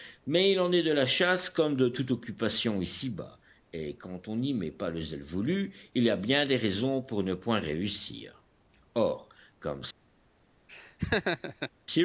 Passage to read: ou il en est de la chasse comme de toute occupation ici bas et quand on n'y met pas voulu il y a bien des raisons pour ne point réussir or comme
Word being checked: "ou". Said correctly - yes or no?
no